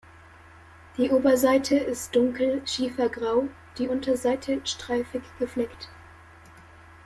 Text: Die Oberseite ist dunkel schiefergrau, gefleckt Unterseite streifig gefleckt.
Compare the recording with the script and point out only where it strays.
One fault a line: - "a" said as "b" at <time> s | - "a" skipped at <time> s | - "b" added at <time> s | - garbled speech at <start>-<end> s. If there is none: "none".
- "gefleckt" said as "die" at 3.8 s